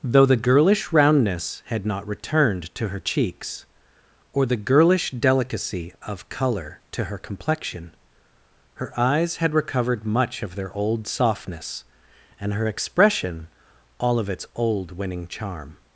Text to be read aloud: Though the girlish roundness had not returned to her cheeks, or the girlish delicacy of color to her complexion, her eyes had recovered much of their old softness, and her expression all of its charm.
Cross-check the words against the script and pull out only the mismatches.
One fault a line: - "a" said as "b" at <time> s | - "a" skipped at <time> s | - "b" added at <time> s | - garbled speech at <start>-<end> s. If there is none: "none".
- "old winning" added at 14.6 s